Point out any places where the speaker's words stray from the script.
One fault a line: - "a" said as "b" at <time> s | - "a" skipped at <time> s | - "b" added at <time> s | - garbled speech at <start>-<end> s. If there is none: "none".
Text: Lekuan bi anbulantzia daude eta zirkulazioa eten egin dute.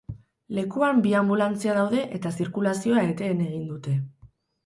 none